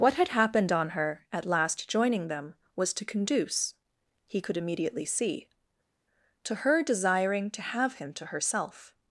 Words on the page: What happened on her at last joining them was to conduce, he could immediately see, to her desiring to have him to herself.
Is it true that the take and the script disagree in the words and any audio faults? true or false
true